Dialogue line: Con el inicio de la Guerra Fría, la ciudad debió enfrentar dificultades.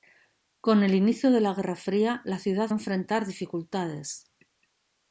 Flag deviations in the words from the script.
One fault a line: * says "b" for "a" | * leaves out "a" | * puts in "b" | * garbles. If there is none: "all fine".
* leaves out "debió"